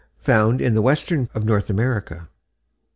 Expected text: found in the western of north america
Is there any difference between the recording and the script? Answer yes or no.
no